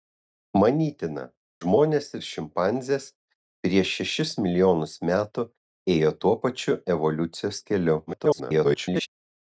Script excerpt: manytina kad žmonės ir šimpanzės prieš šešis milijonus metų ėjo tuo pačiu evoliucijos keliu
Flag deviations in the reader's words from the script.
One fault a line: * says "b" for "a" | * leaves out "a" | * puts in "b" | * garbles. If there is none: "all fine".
* leaves out "kad"
* garbles